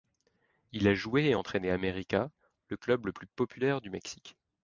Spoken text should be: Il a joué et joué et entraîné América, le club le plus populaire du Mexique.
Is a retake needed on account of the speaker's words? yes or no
yes